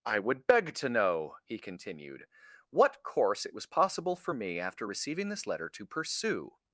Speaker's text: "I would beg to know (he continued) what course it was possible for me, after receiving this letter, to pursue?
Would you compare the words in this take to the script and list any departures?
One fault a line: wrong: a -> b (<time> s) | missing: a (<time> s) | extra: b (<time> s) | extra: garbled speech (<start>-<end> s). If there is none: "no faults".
no faults